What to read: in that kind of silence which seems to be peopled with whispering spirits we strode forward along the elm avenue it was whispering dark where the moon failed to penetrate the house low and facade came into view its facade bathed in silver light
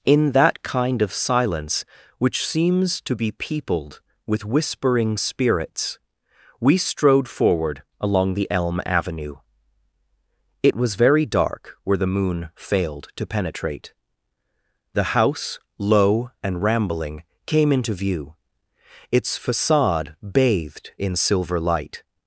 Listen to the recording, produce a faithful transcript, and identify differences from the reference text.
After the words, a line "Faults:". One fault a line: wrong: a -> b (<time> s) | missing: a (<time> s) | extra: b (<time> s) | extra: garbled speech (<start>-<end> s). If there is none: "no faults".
in that kind of silence which seems to be peopled with whispering spirits we strode forward along the elm avenue it was very dark where the moon failed to penetrate the house low and rambling came into view its facade bathed in silver light
Faults:
wrong: whispering -> very (11.0 s)
wrong: facade -> rambling (16.6 s)